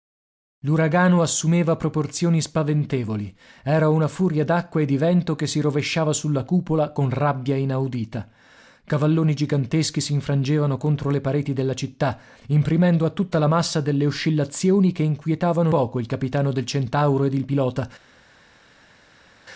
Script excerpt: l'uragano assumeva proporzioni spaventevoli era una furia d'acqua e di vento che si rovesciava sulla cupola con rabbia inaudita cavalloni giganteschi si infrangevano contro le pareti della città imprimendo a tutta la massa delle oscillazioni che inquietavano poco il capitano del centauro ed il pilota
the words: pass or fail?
pass